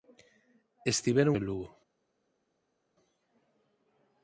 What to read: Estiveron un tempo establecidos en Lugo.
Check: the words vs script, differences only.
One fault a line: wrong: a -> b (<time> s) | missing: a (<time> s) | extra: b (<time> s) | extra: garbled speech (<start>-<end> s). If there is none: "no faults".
missing: un tempo establecidos (1.4 s)